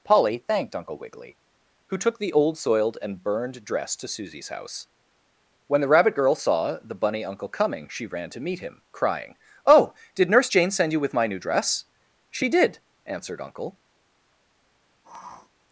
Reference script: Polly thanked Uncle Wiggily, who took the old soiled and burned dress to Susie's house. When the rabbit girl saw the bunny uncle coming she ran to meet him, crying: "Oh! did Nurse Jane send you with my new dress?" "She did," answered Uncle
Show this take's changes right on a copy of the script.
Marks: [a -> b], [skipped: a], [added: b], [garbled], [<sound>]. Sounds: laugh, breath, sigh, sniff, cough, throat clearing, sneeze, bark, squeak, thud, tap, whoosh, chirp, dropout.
Polly thanked Uncle Wiggily, who took the old soiled and burned dress to Susie's house. When the rabbit girl saw the bunny uncle coming she ran to meet him, crying: "Oh! did Nurse Jane send you with my new dress?" "She did," answered Uncle [sniff]